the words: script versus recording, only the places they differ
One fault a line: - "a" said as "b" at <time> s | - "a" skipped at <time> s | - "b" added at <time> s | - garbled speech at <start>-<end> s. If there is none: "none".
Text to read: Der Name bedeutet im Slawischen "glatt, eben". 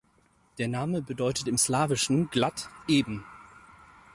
none